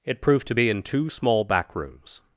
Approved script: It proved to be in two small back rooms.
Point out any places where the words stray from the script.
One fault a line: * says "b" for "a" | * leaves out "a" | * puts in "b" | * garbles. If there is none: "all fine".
all fine